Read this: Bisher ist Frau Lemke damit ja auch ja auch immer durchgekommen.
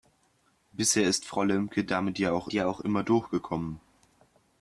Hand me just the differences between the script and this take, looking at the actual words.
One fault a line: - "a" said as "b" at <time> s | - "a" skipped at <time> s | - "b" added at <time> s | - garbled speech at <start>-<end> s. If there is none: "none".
none